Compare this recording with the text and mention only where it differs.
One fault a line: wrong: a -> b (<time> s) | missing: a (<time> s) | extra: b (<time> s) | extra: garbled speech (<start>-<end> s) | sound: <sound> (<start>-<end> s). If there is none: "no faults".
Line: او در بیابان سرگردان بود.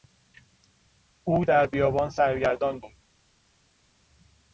no faults